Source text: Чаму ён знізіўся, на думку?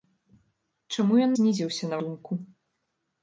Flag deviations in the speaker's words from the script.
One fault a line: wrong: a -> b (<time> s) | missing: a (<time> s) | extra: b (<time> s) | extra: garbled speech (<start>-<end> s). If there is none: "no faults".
no faults